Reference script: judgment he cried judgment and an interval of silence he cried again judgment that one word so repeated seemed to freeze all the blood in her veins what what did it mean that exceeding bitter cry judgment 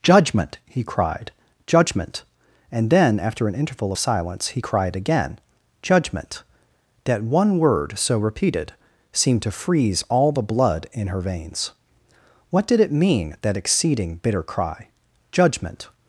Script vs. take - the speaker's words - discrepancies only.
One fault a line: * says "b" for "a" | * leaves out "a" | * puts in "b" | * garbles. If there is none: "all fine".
* puts in "then after"
* leaves out "what"